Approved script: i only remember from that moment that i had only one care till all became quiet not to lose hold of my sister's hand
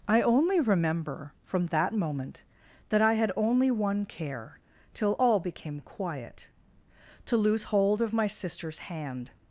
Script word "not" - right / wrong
wrong